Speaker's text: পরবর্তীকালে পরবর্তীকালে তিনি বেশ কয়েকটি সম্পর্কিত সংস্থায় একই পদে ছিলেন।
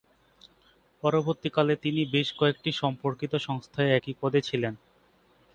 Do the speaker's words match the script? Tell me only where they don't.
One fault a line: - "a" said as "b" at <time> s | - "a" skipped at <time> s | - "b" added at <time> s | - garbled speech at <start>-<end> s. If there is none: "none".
- "পরবর্তীকালে" skipped at 1.7 s